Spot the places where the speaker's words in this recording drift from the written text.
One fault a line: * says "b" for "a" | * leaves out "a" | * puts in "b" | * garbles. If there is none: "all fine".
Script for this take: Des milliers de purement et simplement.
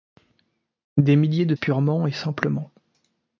all fine